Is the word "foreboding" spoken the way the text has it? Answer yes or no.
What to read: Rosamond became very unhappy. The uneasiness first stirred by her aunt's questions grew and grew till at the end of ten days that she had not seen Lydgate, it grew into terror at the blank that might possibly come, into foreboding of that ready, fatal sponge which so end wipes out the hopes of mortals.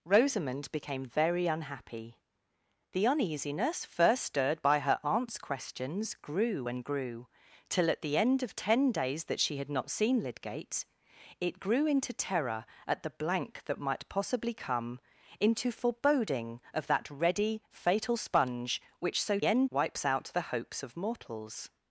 yes